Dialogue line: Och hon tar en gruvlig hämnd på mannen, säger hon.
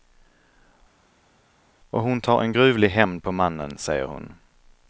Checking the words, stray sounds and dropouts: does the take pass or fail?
pass